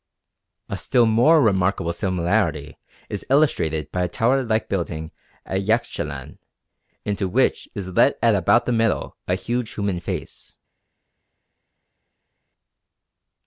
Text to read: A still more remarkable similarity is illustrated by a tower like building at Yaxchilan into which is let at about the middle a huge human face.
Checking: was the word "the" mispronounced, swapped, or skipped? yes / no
no